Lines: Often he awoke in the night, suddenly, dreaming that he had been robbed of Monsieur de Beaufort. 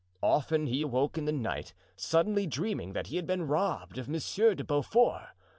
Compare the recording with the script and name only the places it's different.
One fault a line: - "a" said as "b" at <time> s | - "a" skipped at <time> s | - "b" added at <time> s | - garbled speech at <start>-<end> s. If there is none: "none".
none